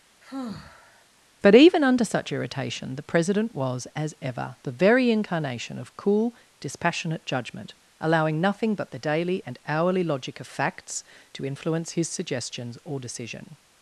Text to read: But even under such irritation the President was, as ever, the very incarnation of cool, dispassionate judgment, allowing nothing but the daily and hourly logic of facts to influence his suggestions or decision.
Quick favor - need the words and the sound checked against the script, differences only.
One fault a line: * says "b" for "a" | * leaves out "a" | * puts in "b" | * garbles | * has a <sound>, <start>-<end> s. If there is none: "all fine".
* has a sigh, 0.2-1.1 s